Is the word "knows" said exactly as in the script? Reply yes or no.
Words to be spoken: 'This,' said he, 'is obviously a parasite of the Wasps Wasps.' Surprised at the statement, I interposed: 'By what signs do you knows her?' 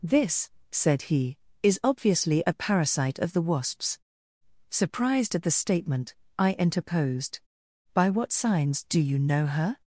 no